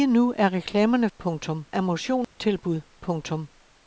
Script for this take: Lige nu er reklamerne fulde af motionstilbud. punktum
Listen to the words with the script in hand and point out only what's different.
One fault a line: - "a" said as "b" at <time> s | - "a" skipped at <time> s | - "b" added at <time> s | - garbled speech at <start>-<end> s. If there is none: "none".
- "fulde" said as "punktum" at 1.2 s